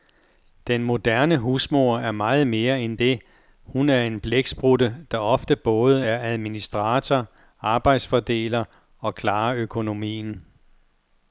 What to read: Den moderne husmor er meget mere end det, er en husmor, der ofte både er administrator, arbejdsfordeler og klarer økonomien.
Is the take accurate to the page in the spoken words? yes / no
no